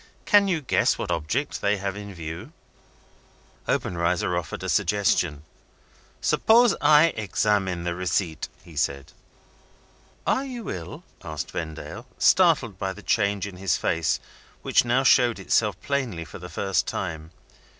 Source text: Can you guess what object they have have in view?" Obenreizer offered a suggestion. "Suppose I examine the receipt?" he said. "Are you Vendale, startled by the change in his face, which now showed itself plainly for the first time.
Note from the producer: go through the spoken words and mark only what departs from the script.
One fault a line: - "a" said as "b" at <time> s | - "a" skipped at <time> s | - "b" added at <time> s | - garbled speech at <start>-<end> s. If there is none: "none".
- "have" skipped at 2.0 s
- "ill asked" added at 10.7 s